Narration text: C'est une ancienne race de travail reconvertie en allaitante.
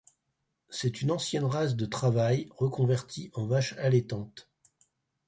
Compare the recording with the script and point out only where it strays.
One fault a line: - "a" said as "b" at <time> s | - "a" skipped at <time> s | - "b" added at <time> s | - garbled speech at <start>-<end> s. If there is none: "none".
- "vache" added at 3.5 s